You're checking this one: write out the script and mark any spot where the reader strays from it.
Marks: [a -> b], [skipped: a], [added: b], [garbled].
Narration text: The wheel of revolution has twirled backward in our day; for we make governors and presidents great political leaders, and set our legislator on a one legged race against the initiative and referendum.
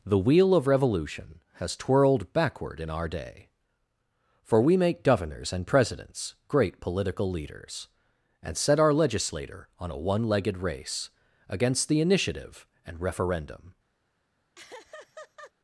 The wheel of revolution has twirled backward in our day; for we make governors and presidents great political leaders, and set our legislator on a one legged race against the initiative and referendum.